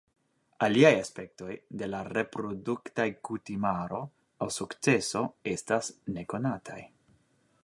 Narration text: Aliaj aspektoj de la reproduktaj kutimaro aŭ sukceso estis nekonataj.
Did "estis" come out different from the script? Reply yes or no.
yes